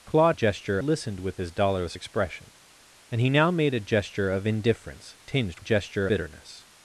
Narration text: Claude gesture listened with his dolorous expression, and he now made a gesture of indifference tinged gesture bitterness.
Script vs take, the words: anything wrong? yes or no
no